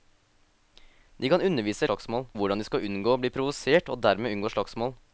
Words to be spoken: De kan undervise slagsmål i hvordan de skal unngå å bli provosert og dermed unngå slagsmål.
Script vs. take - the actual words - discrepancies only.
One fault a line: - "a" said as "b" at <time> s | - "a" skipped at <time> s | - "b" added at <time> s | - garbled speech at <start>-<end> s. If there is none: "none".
none